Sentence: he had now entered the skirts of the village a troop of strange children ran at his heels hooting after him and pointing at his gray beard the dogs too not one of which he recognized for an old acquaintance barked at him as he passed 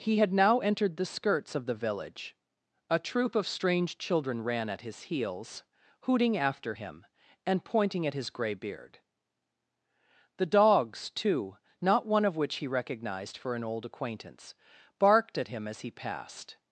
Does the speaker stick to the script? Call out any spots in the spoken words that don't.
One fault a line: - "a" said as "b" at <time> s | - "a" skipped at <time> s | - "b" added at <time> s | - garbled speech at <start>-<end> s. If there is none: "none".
none